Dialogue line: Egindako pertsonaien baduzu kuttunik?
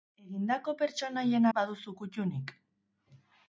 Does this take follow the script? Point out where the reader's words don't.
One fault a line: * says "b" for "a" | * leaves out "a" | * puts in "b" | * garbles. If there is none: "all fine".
all fine